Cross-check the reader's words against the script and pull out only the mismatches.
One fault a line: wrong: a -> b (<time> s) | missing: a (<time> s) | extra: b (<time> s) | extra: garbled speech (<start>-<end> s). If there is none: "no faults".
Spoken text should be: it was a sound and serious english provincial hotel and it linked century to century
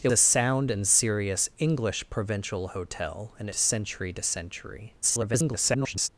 missing: was (0.1 s)
missing: it linked (3.5 s)
extra: garbled speech (5.0-6.1 s)